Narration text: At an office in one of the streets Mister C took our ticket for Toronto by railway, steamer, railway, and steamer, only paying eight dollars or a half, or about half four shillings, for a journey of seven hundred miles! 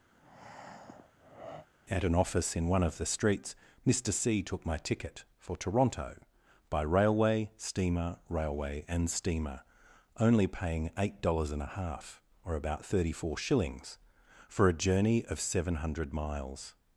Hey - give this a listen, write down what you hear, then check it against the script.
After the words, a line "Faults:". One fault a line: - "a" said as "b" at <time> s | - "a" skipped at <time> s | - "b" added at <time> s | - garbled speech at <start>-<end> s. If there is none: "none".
At an office in one of the streets Mister C took my ticket for Toronto by railway, steamer, railway, and steamer, only paying eight dollars and a half, or about thirty four shillings, for a journey of seven hundred miles!
Faults:
- "our" said as "my" at 4.7 s
- "or" said as "and" at 11.5 s
- "half" said as "thirty" at 12.8 s